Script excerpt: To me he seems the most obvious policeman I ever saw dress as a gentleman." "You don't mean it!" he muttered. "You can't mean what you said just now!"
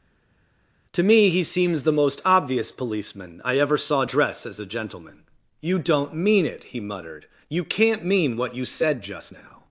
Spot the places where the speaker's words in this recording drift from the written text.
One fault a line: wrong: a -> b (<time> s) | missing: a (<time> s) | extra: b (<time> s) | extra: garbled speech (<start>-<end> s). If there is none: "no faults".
no faults